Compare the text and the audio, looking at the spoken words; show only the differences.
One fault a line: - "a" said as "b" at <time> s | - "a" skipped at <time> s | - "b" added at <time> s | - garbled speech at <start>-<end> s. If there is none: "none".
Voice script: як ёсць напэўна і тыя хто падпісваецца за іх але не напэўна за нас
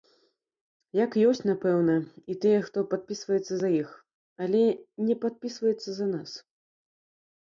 - "напэўна" said as "падпісваецца" at 5.3 s